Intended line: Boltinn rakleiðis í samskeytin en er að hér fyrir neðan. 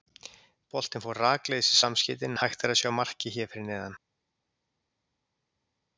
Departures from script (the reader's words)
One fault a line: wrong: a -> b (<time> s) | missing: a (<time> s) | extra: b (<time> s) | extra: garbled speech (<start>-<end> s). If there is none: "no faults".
extra: fór (1.0 s)
extra: hægt (2.4 s)
extra: sjá markið (2.8 s)